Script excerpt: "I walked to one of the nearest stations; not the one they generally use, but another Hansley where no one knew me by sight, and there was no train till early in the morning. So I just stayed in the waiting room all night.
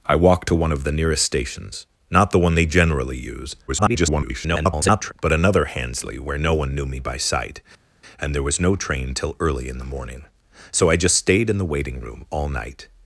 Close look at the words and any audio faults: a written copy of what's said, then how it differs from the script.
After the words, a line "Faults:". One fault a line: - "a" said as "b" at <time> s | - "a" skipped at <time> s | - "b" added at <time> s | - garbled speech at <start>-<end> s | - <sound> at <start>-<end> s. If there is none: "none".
"I walked to one of the nearest stations; not the one they generally use, [garbled] but another Hansley where no one knew me by sight, and there was no train till early in the morning. So I just stayed in the waiting room all night.
Faults:
- garbled speech at 3.7-5.1 s